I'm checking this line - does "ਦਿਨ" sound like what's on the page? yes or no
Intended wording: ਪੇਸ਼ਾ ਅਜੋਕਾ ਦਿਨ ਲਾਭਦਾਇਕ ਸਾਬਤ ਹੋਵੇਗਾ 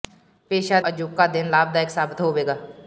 yes